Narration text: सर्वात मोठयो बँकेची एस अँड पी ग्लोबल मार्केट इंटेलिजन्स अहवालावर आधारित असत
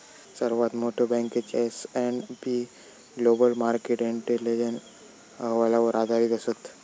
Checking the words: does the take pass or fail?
pass